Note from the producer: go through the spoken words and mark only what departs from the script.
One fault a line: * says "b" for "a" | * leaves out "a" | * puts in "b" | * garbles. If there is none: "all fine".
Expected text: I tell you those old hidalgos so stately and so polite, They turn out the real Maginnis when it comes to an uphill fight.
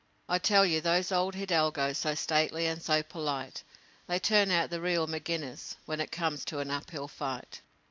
all fine